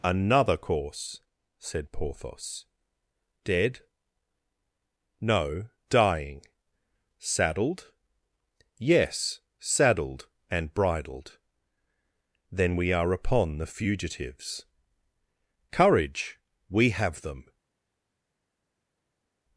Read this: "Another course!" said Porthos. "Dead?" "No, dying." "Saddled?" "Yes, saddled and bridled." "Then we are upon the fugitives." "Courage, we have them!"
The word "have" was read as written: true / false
true